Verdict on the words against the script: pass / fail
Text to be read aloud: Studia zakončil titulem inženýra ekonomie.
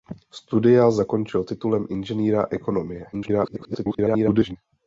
fail